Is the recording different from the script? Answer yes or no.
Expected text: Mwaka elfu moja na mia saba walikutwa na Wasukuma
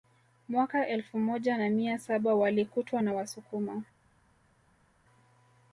no